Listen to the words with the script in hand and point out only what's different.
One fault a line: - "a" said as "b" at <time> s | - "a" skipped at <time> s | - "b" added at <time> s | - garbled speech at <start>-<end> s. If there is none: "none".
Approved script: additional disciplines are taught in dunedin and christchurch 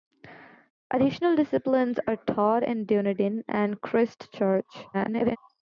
- garbled speech at 4.9-5.4 s